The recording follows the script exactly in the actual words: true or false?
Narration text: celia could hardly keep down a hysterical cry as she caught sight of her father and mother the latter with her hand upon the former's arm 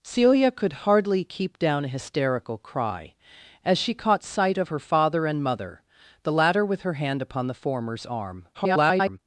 false